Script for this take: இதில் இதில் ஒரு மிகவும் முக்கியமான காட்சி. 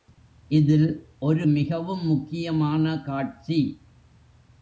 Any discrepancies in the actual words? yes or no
yes